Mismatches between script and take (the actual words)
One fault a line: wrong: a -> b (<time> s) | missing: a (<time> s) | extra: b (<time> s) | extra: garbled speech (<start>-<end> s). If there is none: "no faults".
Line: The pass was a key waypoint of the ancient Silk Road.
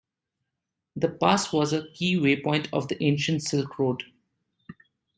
no faults